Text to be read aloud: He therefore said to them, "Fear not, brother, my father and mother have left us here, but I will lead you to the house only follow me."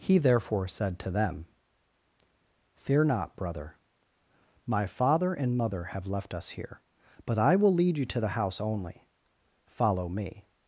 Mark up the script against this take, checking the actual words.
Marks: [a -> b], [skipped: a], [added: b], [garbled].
He therefore said to them, "Fear not, brother, my father and mother have left us here, but I will lead you to the house only follow me."